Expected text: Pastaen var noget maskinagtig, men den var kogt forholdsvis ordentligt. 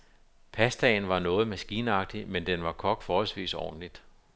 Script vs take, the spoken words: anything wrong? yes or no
no